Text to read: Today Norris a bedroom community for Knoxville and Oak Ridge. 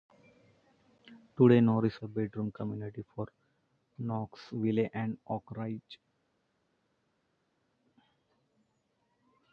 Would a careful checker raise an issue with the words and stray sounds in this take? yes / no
no